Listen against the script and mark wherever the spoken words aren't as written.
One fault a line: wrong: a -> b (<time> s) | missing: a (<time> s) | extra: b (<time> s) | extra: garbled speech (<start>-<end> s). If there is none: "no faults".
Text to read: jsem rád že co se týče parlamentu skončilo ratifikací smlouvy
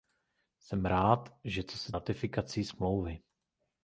missing: týče parlamentu skončilo (1.9 s)